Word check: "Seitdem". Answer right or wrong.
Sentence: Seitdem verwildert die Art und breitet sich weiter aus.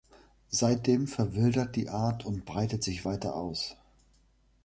right